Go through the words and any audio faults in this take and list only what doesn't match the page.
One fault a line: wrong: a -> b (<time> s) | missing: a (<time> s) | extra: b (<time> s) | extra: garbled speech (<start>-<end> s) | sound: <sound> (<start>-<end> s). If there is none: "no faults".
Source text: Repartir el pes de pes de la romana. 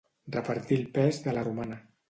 missing: pes de (1.4 s)